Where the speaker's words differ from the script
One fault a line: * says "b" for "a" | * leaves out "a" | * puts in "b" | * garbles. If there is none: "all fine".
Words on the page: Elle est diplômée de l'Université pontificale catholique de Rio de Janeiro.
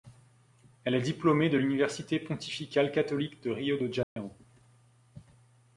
all fine